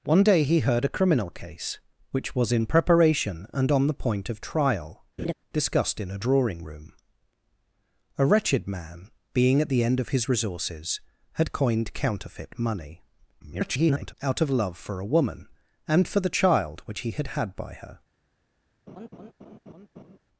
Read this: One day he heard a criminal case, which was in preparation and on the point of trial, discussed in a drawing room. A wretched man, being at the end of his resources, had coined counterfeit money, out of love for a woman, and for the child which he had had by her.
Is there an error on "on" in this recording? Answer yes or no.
no